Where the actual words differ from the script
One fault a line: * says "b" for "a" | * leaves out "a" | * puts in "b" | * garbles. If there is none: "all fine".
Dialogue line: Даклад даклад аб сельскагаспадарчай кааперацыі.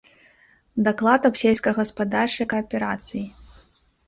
* leaves out "даклад"